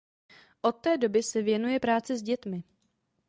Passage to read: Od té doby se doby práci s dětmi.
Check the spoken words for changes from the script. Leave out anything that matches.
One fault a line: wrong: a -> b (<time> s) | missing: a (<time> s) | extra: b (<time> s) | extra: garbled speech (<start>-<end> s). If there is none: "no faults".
wrong: doby -> věnuje (1.4 s)